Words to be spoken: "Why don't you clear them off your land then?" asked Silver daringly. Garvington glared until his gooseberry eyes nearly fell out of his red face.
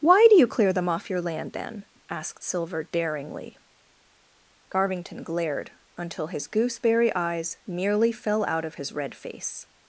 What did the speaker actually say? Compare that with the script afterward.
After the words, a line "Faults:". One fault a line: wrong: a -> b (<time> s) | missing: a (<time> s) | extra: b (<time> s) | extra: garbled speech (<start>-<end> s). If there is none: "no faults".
"Why do you clear them off your land then?" asked Silver daringly. Garvington glared until his gooseberry eyes nearly fell out of his red face.
Faults:
wrong: don't -> do (0.3 s)